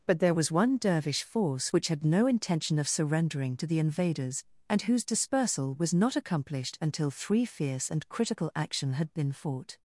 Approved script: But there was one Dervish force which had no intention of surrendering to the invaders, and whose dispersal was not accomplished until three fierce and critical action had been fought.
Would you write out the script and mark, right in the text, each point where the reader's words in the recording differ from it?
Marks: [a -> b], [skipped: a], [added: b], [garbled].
But there was one Dervish force which had no intention of surrendering to the invaders, and whose dispersal was not accomplished until three fierce and critical action had been fought.